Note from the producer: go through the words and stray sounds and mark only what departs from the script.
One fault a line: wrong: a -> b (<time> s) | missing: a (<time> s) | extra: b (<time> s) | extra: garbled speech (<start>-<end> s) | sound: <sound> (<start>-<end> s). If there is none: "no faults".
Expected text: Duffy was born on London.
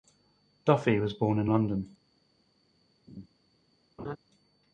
wrong: on -> in (1.4 s)
sound: laugh (3.1-3.3 s)
sound: laugh (4.0-4.2 s)